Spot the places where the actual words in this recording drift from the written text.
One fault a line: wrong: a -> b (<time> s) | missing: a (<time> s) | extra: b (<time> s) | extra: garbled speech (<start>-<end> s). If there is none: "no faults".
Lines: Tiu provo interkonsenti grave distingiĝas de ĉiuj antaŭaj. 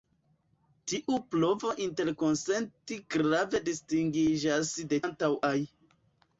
missing: ĉiuj (5.0 s)